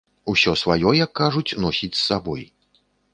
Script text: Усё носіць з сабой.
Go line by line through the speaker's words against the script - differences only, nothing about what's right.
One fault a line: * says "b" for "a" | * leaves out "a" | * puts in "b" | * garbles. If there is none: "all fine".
* puts in "сваё як кажуць"